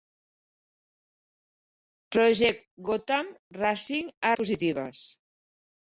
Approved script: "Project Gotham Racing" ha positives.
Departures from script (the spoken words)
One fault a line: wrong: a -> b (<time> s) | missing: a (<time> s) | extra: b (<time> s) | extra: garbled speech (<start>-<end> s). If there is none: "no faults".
no faults